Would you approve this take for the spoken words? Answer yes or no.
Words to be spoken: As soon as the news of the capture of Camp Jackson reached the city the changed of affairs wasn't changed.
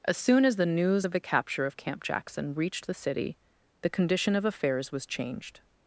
no